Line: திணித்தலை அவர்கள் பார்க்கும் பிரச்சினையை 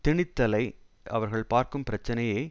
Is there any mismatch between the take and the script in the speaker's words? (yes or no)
no